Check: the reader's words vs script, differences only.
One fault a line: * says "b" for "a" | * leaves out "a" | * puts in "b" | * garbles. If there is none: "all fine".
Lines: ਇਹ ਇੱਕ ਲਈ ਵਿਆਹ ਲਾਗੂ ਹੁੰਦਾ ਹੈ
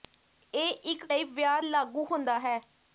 all fine